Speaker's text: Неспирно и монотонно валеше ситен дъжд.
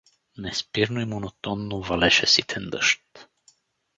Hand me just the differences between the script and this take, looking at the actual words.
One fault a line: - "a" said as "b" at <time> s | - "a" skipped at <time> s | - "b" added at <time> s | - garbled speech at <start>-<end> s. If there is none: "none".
none